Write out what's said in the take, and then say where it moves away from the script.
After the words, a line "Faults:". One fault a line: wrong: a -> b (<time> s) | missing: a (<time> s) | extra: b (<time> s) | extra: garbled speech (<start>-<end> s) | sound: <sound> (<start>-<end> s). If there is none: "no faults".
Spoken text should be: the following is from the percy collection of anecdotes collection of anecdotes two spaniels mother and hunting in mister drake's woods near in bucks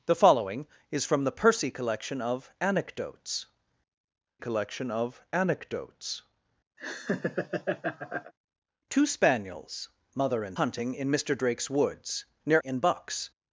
the following is from the percy collection of anecdotes collection of anecdotes two spaniels mother and hunting in mister drake's woods near in bucks
Faults:
sound: laugh (6.8-8.3 s)